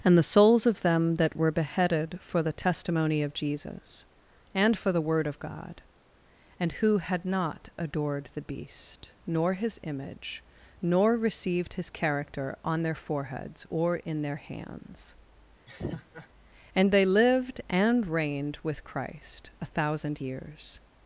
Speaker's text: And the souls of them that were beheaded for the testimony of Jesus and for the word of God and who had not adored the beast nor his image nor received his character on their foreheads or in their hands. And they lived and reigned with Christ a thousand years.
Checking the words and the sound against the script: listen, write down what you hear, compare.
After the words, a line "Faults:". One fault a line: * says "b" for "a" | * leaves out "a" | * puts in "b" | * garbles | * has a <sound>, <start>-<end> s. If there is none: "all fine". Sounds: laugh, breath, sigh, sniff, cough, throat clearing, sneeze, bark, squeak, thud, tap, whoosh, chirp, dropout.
And the souls of them that were beheaded for the testimony of Jesus and for the word of God and who had not adored the beast nor his image nor received his character on their foreheads or in their hands. And they lived and reigned with Christ a thousand years.
Faults:
* has a laugh, 15.7-16.3 s